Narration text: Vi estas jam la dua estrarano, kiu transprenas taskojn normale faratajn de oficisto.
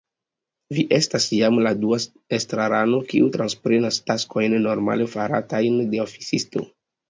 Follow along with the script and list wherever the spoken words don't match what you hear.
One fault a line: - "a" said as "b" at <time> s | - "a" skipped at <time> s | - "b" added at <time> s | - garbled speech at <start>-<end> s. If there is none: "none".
none